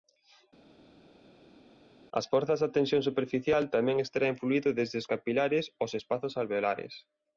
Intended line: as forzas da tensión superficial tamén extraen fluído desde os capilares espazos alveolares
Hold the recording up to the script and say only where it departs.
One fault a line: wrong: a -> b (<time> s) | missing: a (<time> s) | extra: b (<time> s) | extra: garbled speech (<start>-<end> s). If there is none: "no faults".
extra: aos (5.8 s)